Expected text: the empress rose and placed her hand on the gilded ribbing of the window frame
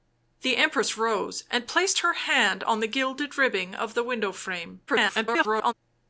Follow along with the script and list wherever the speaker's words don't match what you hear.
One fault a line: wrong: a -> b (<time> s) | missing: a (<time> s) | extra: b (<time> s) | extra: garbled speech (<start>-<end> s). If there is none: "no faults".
extra: garbled speech (4.9-5.7 s)